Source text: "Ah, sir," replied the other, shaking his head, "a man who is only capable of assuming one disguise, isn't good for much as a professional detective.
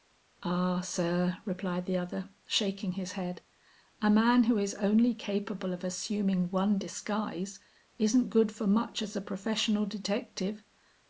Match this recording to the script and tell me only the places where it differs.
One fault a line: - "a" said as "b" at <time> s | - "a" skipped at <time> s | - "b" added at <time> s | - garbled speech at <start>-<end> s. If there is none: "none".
none